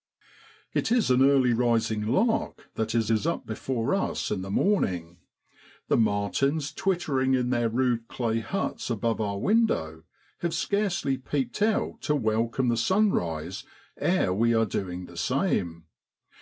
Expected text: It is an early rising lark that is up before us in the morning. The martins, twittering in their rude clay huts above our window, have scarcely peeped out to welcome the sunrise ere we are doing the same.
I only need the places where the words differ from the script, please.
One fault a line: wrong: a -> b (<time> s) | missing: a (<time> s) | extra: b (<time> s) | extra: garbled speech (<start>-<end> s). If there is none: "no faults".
extra: is (3.1 s)